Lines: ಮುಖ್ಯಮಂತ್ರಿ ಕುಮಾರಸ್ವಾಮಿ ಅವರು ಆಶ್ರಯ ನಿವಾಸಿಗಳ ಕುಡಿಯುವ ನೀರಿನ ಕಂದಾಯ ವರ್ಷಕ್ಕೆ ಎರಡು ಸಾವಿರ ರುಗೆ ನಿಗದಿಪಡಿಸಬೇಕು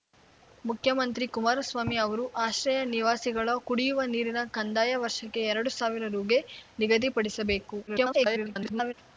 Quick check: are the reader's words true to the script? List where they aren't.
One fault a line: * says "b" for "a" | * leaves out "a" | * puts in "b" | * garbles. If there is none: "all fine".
* garbles